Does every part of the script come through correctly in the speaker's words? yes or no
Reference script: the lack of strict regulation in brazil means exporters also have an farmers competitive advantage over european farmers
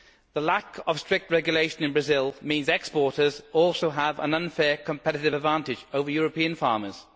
no